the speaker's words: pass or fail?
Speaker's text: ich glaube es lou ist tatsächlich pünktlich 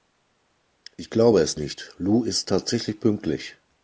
fail